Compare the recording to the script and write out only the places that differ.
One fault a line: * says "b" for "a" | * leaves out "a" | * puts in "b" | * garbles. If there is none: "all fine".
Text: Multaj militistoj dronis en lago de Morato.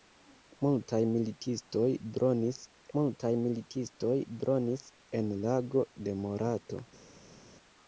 * puts in "multaj militistoj dronis"